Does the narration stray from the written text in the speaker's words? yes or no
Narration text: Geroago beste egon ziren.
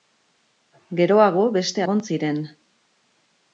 no